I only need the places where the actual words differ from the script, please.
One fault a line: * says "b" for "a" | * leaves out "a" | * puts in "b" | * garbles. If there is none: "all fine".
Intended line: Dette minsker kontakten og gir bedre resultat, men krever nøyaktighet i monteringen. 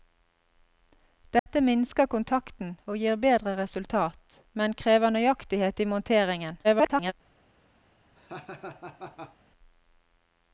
* garbles